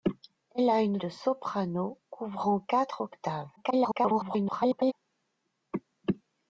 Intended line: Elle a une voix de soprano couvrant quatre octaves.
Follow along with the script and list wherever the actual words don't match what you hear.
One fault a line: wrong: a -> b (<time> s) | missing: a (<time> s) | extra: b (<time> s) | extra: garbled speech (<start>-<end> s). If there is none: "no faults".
missing: voix (1.0 s)
extra: garbled speech (3.6-4.9 s)